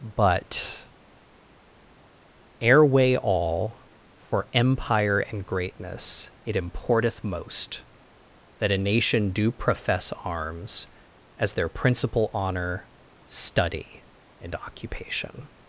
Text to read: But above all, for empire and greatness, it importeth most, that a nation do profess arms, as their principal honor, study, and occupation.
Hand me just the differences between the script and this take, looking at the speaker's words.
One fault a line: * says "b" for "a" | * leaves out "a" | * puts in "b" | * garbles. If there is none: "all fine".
* says "airway" for "above"